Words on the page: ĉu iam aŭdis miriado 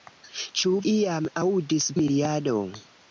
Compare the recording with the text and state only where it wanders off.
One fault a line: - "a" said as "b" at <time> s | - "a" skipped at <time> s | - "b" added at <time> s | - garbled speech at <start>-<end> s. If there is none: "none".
none